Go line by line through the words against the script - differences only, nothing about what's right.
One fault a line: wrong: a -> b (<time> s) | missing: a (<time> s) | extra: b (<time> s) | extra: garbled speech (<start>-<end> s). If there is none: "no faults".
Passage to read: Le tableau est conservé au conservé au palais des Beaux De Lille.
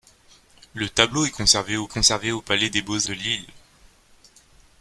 no faults